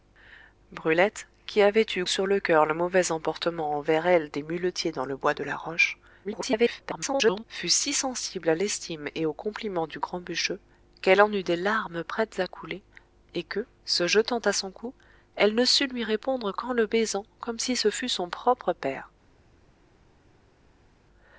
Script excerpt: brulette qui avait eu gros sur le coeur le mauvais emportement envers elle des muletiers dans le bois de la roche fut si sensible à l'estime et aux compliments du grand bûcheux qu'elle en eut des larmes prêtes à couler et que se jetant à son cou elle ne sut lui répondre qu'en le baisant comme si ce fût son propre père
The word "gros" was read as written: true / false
false